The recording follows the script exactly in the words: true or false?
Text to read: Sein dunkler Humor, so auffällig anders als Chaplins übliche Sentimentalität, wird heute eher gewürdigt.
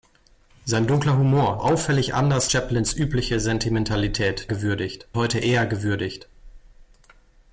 false